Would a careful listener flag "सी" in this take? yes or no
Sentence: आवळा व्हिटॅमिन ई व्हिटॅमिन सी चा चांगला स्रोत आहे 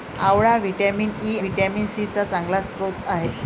no